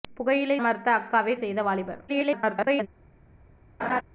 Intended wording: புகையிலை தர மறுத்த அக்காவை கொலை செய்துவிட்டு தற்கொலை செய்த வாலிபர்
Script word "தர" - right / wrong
wrong